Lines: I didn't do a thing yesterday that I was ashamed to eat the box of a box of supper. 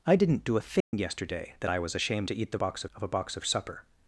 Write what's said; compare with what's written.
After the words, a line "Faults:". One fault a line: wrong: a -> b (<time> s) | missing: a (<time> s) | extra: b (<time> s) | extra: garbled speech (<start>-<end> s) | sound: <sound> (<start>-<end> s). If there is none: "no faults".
I didn't do a thing yesterday that I was ashamed to eat the box of a box of supper.
Faults:
sound: dropout (0.8-0.9 s)